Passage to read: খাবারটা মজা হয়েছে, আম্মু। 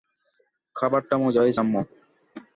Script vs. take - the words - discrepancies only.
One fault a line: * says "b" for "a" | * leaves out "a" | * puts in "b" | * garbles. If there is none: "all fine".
all fine